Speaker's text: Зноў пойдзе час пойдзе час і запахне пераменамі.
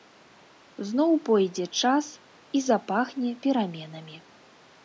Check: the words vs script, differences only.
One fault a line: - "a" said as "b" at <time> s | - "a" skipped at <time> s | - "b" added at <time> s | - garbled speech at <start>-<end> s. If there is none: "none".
- "пойдзе час" skipped at 2.1 s